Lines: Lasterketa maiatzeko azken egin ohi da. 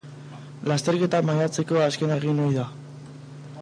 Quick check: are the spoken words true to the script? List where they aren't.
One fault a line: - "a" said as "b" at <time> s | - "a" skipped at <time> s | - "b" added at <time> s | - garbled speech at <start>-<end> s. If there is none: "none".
none